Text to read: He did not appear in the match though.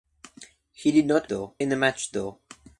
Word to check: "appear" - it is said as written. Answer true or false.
false